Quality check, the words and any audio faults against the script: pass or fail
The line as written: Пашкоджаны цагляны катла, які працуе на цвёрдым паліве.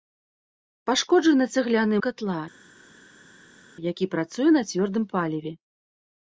pass